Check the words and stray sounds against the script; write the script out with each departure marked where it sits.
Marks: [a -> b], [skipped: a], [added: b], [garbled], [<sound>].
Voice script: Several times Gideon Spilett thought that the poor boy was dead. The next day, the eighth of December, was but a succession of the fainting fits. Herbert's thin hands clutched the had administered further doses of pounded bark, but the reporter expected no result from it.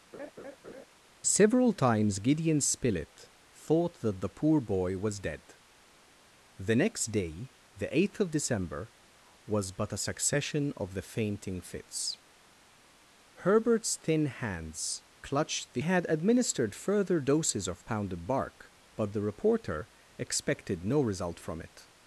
[laugh] Several times Gideon Spilett thought that the poor boy was dead. The next day, the eighth of December, was but a succession of the fainting fits. Herbert's thin hands clutched the had administered further doses of pounded bark, but the reporter expected no result from it.